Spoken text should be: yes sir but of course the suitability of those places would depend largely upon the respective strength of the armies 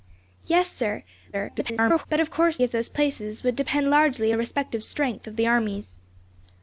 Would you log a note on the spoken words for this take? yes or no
yes